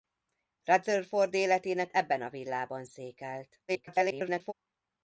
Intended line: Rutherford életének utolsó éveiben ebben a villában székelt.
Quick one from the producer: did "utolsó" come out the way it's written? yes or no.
no